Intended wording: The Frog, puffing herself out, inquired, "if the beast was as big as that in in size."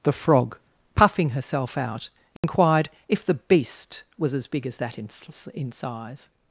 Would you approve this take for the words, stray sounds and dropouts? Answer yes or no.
no